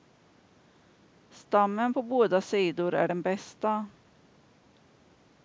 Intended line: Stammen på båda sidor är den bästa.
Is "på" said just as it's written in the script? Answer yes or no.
yes